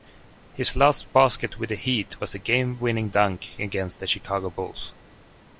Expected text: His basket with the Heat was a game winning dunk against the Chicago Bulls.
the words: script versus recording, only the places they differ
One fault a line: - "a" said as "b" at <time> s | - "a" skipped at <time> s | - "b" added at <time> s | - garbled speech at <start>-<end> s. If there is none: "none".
- "last" added at 0.8 s